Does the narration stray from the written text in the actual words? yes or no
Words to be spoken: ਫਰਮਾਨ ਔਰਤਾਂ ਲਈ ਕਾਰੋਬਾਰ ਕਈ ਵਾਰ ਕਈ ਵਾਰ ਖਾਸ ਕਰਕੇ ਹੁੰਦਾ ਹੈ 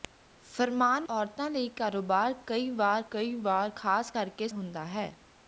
no